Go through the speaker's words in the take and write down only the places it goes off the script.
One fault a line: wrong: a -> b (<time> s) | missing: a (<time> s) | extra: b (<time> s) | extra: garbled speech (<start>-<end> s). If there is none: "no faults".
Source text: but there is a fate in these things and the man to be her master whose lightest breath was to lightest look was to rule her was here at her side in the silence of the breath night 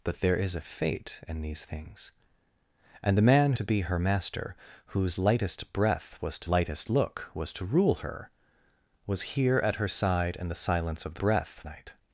no faults